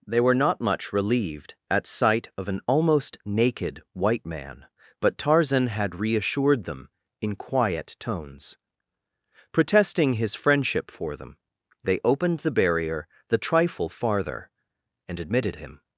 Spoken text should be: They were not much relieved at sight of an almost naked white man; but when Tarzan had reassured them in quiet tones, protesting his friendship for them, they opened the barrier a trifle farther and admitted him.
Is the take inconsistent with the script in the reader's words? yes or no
yes